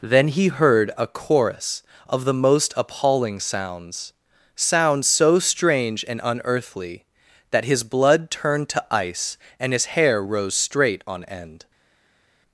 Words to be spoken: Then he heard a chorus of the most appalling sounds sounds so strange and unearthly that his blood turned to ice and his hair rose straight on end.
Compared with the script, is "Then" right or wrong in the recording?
right